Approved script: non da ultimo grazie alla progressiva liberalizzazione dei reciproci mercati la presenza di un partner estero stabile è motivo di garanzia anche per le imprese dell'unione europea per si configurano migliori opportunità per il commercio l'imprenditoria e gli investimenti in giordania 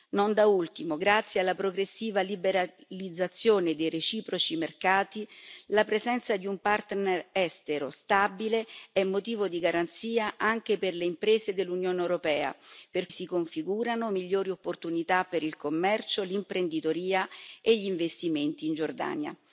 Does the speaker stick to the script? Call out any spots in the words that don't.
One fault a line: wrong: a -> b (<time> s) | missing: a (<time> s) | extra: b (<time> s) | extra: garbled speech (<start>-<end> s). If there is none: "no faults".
no faults